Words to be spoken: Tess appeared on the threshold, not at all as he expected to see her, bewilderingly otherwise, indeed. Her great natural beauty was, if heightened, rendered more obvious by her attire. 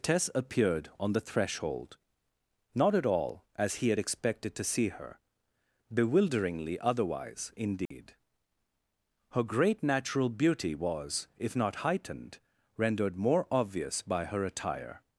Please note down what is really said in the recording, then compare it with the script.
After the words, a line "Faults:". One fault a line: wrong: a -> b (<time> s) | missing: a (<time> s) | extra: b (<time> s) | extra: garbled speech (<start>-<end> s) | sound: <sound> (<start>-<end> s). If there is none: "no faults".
Tess appeared on the threshold, not at all as he had expected to see her, bewilderingly otherwise, indeed. Her great natural beauty was, if not heightened, rendered more obvious by her attire.
Faults:
extra: had (3.9 s)
sound: dropout (7.9-7.9 s)
extra: not (11.6 s)